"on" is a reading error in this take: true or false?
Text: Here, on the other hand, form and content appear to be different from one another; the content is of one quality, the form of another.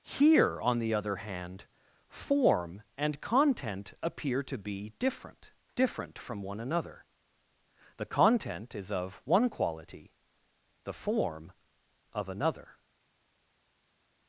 false